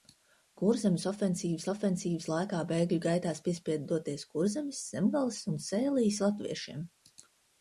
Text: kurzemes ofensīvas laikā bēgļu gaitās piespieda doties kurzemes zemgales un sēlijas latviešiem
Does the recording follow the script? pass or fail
fail